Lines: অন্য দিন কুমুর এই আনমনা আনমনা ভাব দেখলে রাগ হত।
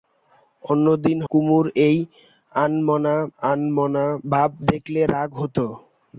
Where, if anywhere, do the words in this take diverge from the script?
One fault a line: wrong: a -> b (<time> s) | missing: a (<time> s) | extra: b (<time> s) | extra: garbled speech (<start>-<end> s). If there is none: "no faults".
no faults